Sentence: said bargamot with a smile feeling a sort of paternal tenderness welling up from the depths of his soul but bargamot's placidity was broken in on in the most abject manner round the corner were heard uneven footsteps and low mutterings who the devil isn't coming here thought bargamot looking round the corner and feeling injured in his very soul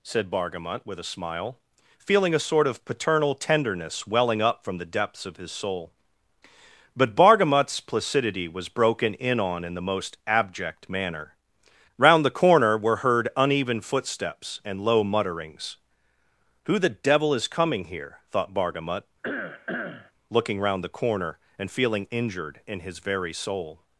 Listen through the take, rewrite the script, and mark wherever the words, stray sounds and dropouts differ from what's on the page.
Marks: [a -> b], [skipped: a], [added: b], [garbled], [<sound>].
said bargamot with a smile feeling a sort of paternal tenderness welling up from the depths of his soul but bargamot's placidity was broken in on in the most abject manner round the corner were heard uneven footsteps and low mutterings who the devil [isn't -> is] coming here thought bargamot [cough] looking round the corner and feeling injured in his very soul